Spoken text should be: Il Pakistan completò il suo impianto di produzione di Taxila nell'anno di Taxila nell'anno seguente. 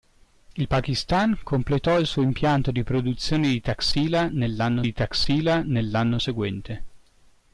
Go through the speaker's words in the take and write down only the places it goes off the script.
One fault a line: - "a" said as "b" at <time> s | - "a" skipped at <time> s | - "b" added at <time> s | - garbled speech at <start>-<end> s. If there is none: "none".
none